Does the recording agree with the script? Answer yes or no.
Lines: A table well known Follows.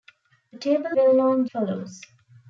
yes